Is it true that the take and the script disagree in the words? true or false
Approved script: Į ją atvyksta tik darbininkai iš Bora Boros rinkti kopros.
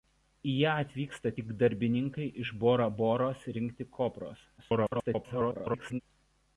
true